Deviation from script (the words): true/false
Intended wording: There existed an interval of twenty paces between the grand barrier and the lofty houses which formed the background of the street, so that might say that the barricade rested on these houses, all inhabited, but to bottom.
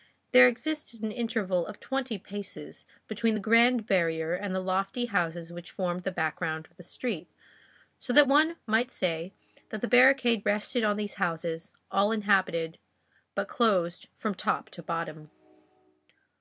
true